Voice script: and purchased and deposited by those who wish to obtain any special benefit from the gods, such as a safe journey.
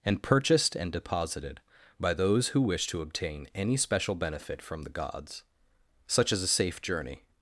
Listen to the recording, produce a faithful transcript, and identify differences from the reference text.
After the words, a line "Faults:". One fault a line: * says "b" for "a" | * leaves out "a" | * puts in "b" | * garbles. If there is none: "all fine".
and purchased and deposited by those who wish to obtain any special benefit from the gods, such as a safe journey.
Faults:
all fine